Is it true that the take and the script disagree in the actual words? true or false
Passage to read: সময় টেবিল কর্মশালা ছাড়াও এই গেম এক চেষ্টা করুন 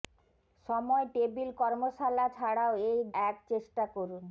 true